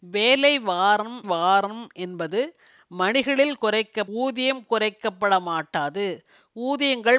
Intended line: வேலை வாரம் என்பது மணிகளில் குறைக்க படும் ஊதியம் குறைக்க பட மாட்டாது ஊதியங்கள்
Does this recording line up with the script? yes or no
no